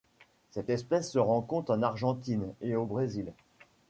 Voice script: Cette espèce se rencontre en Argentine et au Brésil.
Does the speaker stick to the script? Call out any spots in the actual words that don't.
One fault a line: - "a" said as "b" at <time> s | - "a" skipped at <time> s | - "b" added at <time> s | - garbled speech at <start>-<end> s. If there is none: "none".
none